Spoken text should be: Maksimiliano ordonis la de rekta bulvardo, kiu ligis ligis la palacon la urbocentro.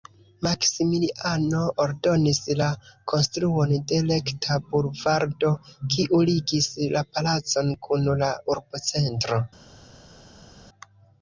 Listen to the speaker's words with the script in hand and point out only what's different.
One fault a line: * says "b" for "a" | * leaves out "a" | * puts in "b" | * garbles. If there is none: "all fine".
* puts in "konstruon"
* leaves out "ligis"
* puts in "kun"